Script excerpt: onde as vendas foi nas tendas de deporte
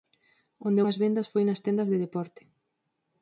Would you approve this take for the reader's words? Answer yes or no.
yes